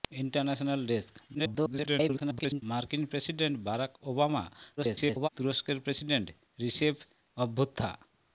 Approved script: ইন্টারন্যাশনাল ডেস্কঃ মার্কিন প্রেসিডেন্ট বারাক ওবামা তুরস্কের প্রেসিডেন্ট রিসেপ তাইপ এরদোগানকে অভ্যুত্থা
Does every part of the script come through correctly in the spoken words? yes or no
no